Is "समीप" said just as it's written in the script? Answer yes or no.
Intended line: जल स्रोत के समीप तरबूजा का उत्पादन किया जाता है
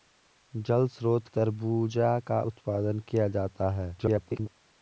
no